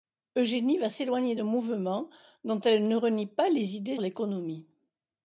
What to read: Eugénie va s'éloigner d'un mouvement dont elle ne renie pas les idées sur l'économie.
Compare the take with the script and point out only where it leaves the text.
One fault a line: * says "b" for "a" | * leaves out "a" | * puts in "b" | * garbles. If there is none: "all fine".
* leaves out "sur"